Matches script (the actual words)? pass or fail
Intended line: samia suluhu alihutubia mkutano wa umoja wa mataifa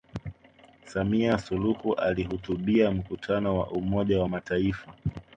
pass